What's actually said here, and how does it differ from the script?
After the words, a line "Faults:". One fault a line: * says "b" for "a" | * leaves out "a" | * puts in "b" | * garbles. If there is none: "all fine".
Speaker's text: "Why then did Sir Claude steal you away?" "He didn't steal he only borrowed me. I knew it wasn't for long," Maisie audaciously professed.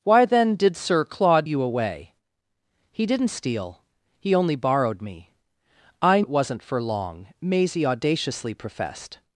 "Why then did Sir Claude you away?" "He didn't steal he only borrowed me. I it wasn't for long," Maisie audaciously professed.
Faults:
* leaves out "steal"
* leaves out "knew"